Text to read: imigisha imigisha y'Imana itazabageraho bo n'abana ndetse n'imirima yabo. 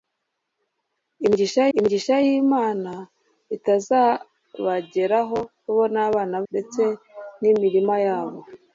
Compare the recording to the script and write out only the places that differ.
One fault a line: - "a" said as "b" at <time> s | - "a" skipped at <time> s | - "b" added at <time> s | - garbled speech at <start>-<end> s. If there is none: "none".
none